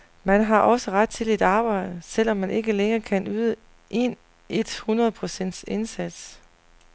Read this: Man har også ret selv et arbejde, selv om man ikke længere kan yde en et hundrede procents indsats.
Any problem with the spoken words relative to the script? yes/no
yes